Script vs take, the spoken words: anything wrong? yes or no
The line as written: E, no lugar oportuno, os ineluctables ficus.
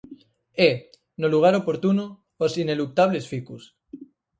no